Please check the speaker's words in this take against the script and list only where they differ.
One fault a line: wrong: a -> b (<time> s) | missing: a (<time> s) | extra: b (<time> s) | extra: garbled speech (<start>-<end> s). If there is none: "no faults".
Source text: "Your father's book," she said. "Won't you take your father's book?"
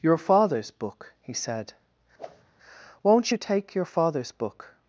wrong: she -> he (1.2 s)